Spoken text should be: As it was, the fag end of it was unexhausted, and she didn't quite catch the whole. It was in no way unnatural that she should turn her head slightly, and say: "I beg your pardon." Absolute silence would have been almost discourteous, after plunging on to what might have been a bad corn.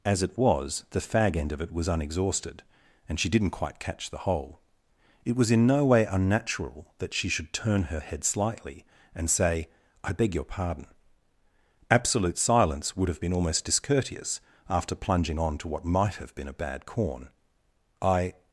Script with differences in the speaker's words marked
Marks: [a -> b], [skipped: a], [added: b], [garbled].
As it was, the fag end of it was unexhausted, and she didn't quite catch the whole. It was in no way unnatural that she should turn her head slightly, and say: "I beg your pardon." Absolute silence would have been almost discourteous, after plunging on to what might have been a bad corn. [added: I]